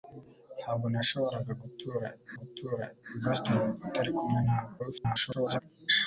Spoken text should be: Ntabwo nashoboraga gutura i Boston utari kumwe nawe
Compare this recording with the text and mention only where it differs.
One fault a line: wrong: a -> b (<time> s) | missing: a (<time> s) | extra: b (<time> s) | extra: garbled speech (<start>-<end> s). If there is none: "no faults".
extra: gutura (2.4 s)
extra: garbled speech (4.8-5.6 s)